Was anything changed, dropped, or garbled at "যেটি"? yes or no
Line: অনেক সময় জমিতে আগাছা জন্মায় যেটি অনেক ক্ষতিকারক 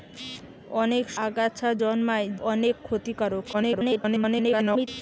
yes